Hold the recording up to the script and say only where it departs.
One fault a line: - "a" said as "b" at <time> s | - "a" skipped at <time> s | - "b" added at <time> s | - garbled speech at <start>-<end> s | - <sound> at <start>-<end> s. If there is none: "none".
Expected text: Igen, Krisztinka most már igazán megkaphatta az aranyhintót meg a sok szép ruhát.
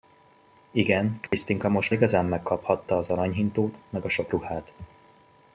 - dropout at 1.3-1.3 s
- "már" skipped at 1.9 s
- "szép" skipped at 4.3 s